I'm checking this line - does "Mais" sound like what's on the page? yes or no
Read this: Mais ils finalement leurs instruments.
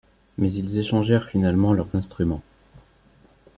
yes